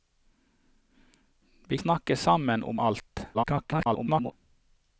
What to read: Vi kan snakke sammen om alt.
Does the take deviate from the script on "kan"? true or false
true